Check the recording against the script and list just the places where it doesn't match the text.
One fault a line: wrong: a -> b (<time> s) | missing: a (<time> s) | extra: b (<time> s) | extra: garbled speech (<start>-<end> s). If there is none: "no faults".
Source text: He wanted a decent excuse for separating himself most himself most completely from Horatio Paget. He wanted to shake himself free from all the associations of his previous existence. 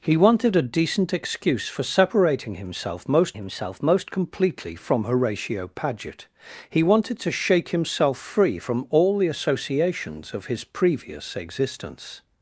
no faults